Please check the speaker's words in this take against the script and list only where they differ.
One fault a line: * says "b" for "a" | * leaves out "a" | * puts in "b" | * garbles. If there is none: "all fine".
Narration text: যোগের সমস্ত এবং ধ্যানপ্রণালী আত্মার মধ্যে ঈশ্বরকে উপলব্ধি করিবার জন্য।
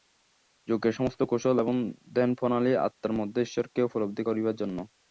* puts in "কৌশল"